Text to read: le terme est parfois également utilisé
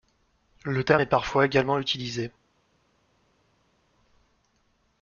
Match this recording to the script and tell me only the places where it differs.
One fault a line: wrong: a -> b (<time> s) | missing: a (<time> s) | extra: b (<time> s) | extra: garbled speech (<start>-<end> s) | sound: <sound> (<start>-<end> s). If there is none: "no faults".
no faults